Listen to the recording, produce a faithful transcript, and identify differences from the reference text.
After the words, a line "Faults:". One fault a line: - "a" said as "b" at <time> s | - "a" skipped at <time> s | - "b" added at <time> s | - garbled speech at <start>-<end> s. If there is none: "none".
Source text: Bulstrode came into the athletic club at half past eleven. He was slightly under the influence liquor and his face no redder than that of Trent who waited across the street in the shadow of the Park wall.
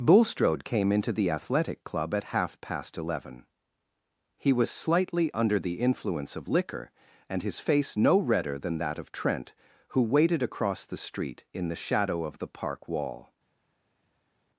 Bulstrode came into the athletic club at half past eleven. He was slightly under the influence of liquor and his face no redder than that of Trent who waited across the street in the shadow of the Park wall.
Faults:
- "of" added at 6.3 s